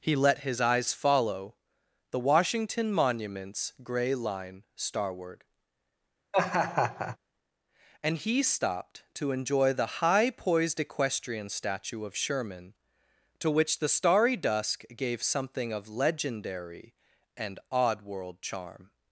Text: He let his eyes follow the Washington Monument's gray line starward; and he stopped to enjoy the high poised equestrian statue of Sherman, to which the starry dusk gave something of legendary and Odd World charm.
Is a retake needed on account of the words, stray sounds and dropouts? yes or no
yes